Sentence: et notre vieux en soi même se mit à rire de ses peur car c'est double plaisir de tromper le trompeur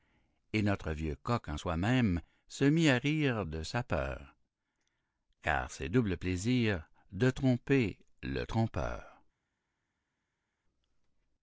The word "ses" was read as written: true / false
false